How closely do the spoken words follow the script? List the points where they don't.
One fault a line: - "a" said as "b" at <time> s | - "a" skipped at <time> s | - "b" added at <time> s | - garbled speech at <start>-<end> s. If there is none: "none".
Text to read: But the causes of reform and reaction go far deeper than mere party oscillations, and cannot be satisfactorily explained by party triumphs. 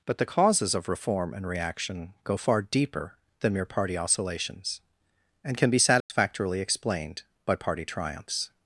- "cannot" said as "can" at 5.6 s